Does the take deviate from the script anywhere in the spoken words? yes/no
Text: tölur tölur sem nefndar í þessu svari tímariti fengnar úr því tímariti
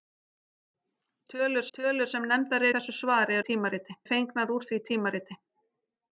no